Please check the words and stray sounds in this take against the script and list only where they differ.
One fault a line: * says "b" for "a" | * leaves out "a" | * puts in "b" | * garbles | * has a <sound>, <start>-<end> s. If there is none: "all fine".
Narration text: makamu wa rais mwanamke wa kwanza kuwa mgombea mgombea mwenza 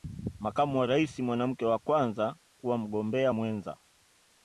* leaves out "mgombea"